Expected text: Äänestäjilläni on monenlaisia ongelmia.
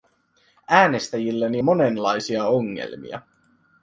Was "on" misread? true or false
true